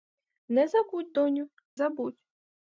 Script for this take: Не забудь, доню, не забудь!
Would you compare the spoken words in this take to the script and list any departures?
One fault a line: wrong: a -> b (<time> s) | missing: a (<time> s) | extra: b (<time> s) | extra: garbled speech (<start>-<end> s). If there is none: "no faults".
missing: не (1.4 s)